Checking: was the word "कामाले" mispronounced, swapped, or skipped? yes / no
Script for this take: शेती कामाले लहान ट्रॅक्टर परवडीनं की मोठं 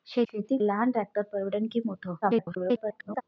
yes